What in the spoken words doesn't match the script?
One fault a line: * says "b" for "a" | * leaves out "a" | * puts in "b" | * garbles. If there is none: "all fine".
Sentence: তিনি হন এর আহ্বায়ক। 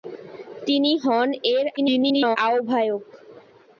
* garbles